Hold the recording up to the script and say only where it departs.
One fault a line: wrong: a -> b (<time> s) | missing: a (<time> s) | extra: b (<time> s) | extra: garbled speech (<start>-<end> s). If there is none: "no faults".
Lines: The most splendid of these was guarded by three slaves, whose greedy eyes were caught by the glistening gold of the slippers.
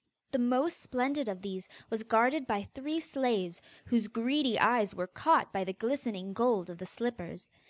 no faults